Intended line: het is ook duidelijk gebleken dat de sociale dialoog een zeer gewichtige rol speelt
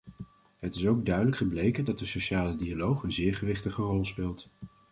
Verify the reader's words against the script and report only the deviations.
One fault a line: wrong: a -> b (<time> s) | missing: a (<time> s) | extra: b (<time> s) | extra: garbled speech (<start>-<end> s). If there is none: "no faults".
no faults